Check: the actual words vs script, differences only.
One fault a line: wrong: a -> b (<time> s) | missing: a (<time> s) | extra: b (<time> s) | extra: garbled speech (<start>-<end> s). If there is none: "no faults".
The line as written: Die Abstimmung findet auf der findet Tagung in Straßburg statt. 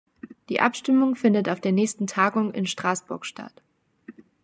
wrong: findet -> nächsten (1.7 s)